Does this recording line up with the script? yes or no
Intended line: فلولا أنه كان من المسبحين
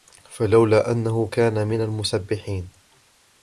yes